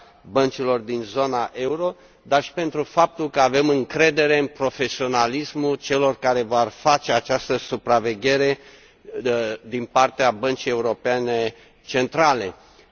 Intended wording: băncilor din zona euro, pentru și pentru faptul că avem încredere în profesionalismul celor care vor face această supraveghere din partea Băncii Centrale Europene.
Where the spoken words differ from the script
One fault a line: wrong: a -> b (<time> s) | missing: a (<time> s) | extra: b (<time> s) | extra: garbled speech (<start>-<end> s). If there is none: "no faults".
wrong: pentru -> dar (2.2 s)